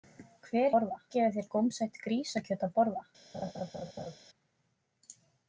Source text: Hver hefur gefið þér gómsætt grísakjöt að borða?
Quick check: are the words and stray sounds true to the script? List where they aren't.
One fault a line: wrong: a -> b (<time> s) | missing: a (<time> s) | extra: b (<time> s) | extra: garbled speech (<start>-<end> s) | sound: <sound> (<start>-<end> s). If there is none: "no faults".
wrong: hefur -> borða (0.8 s)
sound: laugh (3.3-4.2 s)